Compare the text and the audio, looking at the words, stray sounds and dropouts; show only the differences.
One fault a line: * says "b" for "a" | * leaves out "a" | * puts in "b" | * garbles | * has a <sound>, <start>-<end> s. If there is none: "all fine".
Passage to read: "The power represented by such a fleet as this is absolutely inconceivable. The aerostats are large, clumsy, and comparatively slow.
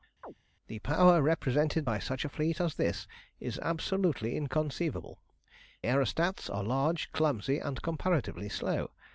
* has a chirp, 0.2-0.3 s
* leaves out "The"